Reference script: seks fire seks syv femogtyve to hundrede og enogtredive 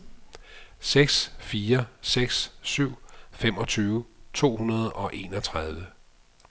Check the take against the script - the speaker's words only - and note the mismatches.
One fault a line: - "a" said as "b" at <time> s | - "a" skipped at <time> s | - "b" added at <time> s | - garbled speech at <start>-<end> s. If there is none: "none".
none